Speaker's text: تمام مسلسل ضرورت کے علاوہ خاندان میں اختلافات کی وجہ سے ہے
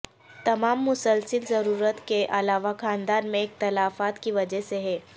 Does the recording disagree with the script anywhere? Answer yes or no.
no